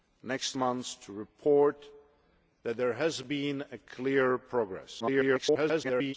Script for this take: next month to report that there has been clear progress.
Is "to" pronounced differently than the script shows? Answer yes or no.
no